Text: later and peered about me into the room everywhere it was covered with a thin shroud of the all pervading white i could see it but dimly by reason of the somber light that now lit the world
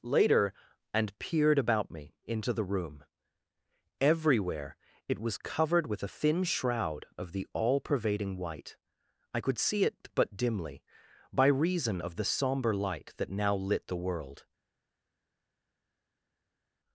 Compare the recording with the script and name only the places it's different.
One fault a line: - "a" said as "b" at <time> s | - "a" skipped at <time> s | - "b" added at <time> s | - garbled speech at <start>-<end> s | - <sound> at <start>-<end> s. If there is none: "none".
none